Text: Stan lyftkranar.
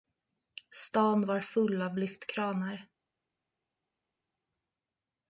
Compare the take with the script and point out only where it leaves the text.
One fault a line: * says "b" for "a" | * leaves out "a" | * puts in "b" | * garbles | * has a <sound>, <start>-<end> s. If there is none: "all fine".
* puts in "var full av"